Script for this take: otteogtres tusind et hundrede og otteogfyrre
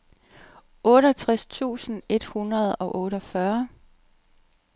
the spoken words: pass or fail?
pass